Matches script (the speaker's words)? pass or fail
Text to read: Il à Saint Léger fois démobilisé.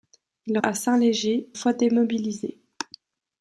pass